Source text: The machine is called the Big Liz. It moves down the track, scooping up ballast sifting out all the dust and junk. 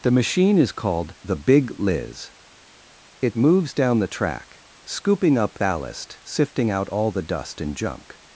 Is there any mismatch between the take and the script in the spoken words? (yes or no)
no